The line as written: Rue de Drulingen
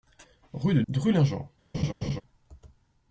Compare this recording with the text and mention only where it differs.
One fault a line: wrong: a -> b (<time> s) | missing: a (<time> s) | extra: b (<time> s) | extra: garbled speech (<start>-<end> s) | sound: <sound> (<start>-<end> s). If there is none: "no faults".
sound: laugh (1.7-2.2 s)